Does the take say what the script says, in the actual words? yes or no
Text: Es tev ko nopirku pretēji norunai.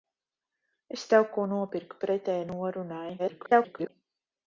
no